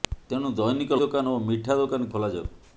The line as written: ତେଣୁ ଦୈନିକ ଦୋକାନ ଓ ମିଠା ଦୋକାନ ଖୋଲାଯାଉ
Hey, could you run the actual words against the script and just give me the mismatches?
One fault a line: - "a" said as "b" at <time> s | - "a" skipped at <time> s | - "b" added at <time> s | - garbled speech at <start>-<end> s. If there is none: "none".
none